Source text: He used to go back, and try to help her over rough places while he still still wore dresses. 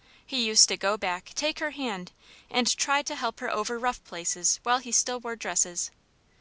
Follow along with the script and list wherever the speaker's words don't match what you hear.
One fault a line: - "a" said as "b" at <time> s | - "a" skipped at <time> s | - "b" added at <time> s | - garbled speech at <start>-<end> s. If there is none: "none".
- "take her hand" added at 1.3 s
- "still" skipped at 5.2 s